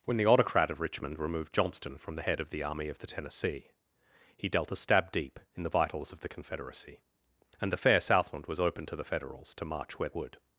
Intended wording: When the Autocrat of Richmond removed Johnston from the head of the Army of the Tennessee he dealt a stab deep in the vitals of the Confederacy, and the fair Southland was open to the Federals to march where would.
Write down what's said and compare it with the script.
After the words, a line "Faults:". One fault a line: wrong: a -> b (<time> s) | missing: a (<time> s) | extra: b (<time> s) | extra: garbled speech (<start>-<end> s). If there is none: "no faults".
When the Autocrat of Richmond removed Johnston from the head of the Army of the Tennessee he dealt a stab deep in the vitals of the Confederacy, and the fair Southland was open to the Federals to march where would.
Faults:
no faults